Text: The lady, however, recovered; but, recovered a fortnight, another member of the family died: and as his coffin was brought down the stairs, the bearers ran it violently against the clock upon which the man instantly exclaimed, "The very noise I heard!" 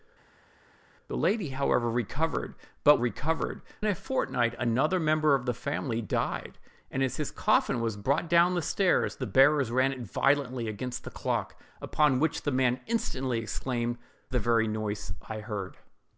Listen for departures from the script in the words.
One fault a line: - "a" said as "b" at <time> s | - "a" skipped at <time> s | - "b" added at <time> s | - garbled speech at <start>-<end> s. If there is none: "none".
none